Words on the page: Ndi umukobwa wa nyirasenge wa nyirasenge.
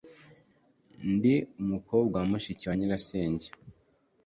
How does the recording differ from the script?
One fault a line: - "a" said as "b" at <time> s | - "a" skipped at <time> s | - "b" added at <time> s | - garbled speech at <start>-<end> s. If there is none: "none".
- "nyirasenge" said as "mushiki" at 2.3 s